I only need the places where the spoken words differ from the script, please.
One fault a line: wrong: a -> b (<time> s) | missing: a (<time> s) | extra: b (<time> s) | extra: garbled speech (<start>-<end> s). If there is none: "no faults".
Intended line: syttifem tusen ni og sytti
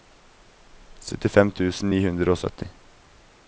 extra: hundre (2.1 s)